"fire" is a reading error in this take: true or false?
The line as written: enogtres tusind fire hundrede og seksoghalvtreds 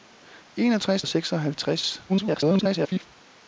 true